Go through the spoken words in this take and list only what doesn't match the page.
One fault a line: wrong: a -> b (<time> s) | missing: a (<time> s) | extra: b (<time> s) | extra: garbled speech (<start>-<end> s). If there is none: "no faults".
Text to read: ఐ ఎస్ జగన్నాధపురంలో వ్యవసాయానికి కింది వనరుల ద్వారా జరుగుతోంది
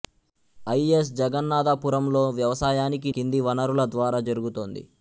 no faults